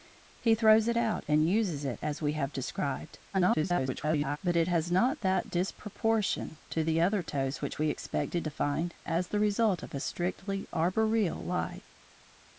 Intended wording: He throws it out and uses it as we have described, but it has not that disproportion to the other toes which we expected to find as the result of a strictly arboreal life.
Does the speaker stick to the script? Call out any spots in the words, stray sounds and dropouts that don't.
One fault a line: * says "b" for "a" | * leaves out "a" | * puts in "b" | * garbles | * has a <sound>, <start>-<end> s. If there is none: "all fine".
* garbles